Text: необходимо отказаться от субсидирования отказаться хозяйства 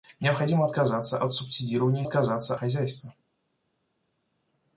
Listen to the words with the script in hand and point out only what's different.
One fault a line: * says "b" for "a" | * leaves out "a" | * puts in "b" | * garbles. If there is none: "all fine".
all fine